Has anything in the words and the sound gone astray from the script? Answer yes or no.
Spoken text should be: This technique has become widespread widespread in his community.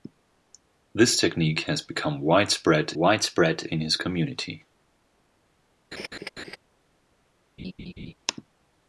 yes